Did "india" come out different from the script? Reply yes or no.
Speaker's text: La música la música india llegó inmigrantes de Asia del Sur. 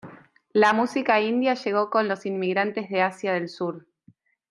yes